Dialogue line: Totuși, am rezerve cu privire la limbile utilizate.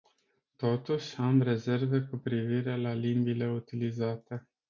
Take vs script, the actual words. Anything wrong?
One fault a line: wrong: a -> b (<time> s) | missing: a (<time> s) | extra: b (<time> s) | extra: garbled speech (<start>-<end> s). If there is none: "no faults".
no faults